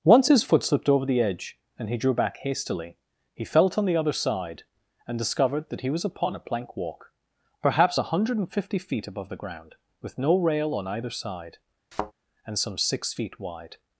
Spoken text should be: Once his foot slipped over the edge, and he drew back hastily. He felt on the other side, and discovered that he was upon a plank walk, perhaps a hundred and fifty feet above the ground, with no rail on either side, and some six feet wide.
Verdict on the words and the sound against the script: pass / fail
fail